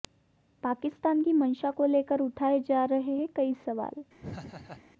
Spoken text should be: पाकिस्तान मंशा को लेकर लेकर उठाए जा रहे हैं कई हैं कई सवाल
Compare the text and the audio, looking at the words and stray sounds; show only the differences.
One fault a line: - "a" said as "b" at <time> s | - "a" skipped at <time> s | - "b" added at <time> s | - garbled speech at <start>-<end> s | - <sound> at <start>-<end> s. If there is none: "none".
- "की" added at 1.2 s
- "लेकर" skipped at 2.2 s
- "हैं कई" skipped at 3.5 s
- laugh at 4.2-4.8 s